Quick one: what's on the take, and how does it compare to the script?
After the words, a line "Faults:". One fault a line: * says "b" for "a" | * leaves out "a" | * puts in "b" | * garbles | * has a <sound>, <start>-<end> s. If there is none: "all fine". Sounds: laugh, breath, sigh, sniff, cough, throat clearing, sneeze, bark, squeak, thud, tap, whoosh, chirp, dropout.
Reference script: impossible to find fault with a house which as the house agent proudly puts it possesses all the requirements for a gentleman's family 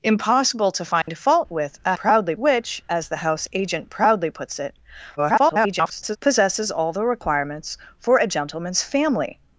impossible to find fault with a proudly which as the house agent proudly puts it [garbled] possesses all the requirements for a gentleman's family
Faults:
* has a dropout, 1.0-1.1 s
* says "proudly" for "house"
* garbles